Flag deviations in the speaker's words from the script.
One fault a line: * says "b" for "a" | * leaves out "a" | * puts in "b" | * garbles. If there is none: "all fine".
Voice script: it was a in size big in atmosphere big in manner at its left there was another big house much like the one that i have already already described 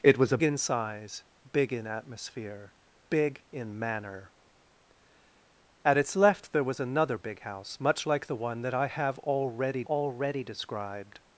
all fine